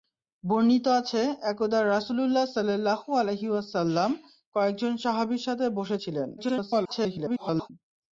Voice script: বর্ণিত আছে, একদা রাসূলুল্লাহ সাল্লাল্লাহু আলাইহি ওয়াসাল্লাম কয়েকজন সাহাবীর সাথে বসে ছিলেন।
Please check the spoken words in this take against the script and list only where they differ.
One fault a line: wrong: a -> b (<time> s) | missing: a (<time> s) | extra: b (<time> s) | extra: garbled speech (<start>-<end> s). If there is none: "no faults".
extra: garbled speech (6.4-7.7 s)